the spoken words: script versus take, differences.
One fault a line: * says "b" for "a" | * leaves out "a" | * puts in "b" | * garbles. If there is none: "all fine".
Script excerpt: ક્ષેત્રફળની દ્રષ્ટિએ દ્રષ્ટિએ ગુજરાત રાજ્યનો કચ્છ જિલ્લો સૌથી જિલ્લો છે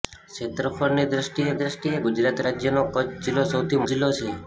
all fine